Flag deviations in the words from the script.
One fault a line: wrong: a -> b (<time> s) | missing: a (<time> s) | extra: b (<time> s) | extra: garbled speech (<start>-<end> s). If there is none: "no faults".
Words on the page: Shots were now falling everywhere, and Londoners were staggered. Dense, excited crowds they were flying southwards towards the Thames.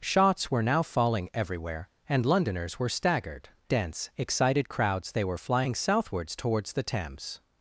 no faults